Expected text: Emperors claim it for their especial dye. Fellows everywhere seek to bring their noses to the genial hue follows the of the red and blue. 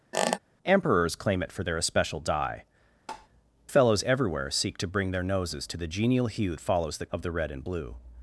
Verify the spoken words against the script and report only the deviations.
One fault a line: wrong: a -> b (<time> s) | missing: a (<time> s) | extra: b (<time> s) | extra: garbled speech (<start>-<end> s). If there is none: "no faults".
no faults